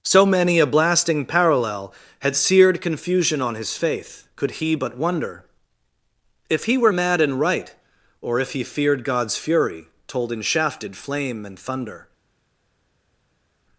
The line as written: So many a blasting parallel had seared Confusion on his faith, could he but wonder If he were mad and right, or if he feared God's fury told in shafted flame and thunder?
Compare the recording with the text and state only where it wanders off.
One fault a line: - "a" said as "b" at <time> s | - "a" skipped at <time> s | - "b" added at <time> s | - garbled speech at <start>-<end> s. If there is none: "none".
none